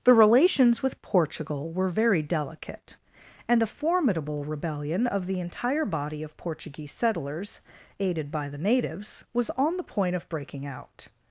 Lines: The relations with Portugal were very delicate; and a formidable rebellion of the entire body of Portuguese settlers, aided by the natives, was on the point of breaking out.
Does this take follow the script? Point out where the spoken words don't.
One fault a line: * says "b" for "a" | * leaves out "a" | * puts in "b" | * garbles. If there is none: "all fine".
all fine